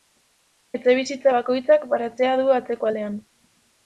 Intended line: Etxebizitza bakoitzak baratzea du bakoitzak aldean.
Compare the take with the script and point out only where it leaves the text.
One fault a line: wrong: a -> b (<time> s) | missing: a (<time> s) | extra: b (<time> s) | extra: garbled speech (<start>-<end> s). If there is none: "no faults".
wrong: bakoitzak -> atzeko (2.6 s)